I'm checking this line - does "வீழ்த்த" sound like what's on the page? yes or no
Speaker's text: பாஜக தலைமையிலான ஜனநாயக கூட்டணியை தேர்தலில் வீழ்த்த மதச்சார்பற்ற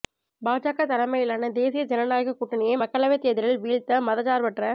yes